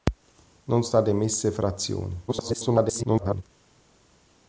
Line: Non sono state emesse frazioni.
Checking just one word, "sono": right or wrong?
wrong